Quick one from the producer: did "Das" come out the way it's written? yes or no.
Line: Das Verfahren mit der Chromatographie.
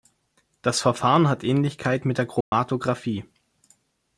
yes